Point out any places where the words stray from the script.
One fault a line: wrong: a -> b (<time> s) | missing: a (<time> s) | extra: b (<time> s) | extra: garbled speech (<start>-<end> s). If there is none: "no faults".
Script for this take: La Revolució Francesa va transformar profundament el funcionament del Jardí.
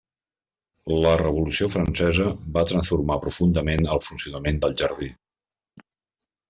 no faults